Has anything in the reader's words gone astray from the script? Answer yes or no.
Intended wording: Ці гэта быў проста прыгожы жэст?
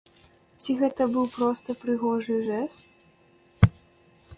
no